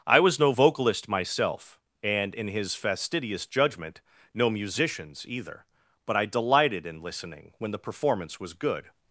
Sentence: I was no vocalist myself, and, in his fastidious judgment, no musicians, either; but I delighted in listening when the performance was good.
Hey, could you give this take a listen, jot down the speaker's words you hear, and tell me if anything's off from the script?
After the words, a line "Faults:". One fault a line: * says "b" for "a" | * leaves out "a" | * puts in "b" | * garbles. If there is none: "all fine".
I was no vocalist myself, and, in his fastidious judgment, no musicians, either; but I delighted in listening when the performance was good.
Faults:
all fine